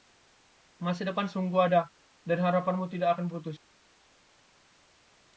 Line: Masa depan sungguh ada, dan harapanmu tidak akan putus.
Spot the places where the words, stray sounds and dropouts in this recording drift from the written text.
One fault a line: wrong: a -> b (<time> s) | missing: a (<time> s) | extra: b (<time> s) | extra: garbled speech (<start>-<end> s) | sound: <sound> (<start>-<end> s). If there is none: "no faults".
no faults